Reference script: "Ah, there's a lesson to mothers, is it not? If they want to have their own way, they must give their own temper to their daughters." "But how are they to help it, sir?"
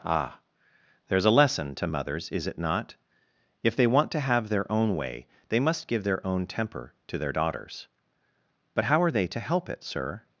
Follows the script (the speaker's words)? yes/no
yes